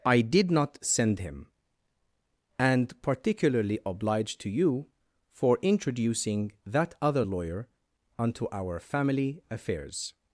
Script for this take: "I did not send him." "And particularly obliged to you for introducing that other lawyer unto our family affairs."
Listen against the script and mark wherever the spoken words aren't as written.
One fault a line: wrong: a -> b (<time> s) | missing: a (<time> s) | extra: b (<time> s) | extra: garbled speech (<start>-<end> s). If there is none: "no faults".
no faults